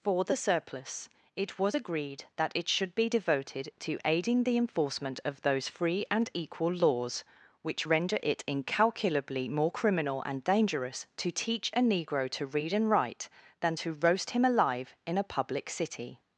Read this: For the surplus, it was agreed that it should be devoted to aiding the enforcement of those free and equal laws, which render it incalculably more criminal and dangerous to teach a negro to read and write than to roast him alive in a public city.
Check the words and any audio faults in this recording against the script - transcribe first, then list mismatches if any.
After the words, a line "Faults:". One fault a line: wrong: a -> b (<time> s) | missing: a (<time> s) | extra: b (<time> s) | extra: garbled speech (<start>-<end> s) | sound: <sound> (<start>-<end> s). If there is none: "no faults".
For the surplus, it was agreed that it should be devoted to aiding the enforcement of those free and equal laws, which render it incalculably more criminal and dangerous to teach a negro to read and write than to roast him alive in a public city.
Faults:
no faults